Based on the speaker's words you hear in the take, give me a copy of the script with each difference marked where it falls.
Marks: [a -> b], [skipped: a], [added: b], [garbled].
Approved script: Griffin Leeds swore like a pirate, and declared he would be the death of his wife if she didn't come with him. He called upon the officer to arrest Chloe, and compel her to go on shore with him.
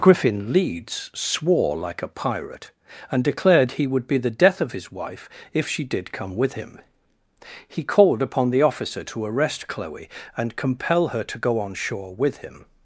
Griffin Leeds swore like a pirate, and declared he would be the death of his wife if she [didn't -> did] come with him. He called upon the officer to arrest Chloe, and compel her to go on shore with him.